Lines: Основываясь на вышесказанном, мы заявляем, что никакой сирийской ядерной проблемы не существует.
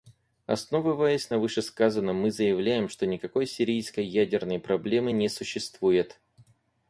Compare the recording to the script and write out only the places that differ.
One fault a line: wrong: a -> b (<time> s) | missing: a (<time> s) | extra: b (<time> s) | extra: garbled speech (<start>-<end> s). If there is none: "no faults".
no faults